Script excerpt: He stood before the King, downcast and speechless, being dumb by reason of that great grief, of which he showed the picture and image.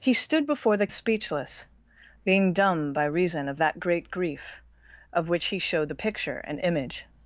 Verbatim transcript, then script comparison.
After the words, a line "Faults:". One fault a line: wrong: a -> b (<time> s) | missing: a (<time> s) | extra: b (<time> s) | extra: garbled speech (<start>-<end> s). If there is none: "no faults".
He stood before the Speechless, being dumb by reason of that great grief, of which he showed the picture and image.
Faults:
missing: King downcast and (0.9 s)